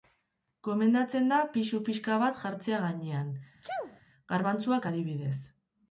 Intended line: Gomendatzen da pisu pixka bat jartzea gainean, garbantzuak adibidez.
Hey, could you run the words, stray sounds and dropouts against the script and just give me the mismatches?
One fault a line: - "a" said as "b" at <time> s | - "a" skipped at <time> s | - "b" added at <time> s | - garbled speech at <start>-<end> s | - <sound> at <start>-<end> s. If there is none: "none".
- sneeze at 3.6-4.0 s